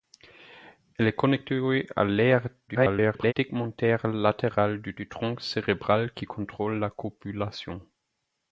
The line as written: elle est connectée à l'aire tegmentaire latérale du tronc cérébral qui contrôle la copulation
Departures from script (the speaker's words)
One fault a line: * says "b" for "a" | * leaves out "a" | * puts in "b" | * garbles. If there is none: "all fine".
* garbles
* puts in "du"